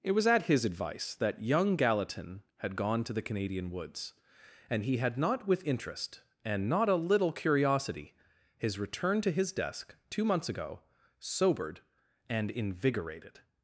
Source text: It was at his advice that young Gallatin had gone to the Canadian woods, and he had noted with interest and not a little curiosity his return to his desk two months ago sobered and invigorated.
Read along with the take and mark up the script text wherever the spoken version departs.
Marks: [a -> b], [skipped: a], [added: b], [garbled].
It was at his advice that young Gallatin had gone to the Canadian woods, and he had [noted -> not] with interest and not a little curiosity his return to his desk two months ago sobered and invigorated.